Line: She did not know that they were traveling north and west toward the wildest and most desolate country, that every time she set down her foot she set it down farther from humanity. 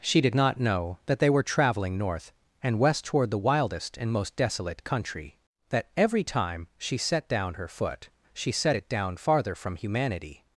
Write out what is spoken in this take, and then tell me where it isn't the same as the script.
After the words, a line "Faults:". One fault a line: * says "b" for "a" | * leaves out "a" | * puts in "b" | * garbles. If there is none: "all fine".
She did not know that they were traveling north and west toward the wildest and most desolate country, that every time she set down her foot she set it down farther from humanity.
Faults:
all fine